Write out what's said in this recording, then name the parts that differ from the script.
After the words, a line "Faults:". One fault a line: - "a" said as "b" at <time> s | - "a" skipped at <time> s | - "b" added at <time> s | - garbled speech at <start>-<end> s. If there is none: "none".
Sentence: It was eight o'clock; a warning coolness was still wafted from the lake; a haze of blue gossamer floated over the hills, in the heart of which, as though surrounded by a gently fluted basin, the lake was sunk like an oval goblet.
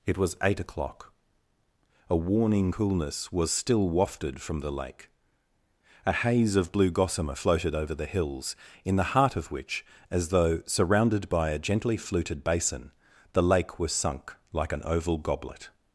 It was eight o'clock; a warning coolness was still wafted from the lake; a haze of blue gossamer floated over the hills, in the heart of which, as though surrounded by a gently fluted basin, the lake was sunk like an oval goblet.
Faults:
none